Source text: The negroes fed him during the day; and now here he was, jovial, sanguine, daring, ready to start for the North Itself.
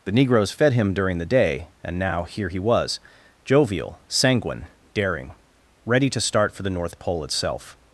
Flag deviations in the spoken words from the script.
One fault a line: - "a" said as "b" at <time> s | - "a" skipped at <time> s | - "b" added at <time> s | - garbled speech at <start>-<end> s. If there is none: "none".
- "Pole" added at 7.0 s